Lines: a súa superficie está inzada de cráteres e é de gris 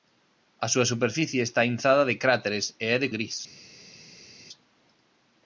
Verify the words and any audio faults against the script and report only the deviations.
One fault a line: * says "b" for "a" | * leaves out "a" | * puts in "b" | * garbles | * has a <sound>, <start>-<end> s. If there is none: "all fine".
all fine